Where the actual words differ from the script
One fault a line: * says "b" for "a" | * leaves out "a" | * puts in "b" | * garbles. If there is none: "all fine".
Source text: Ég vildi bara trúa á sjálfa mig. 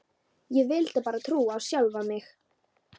all fine